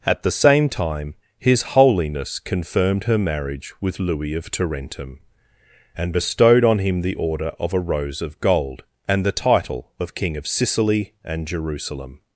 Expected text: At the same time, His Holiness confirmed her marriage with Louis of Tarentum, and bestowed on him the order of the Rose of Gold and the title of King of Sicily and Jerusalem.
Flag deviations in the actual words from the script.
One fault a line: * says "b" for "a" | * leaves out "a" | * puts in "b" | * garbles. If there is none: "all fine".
* says "a" for "the"